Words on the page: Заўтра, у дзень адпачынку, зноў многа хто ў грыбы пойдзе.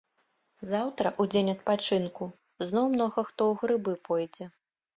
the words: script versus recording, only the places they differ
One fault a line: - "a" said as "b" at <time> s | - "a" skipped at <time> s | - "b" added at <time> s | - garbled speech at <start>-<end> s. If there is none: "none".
none